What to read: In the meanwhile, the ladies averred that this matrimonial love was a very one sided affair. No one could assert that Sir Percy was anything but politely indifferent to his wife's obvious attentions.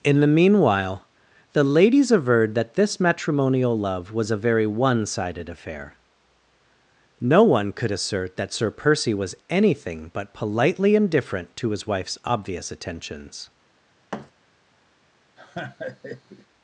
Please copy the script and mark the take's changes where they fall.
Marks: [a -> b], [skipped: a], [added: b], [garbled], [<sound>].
In the meanwhile, the ladies averred that this matrimonial love was a very one sided affair. No one could assert that Sir Percy was anything but politely indifferent to his wife's obvious attentions. [thud] [laugh]